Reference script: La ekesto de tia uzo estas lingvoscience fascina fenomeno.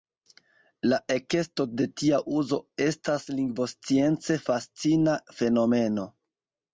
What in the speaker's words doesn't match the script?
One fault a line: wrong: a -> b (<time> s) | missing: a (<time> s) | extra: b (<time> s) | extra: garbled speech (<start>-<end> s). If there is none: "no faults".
no faults